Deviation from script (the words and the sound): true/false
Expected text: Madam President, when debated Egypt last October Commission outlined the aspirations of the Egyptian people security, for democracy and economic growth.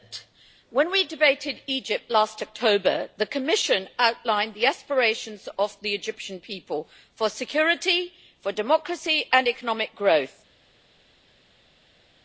true